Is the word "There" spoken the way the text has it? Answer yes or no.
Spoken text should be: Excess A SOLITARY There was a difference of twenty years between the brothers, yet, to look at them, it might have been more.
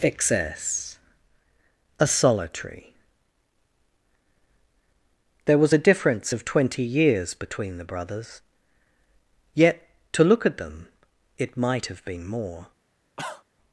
yes